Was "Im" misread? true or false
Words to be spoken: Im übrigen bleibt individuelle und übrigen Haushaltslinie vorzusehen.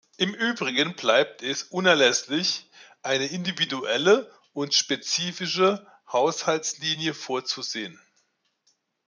false